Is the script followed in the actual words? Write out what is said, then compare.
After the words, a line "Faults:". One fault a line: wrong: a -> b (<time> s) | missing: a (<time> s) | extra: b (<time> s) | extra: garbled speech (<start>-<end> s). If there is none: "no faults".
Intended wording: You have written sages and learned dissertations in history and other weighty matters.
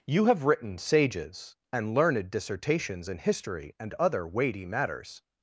You have written sages and learned dissertations in history and other weighty matters.
Faults:
no faults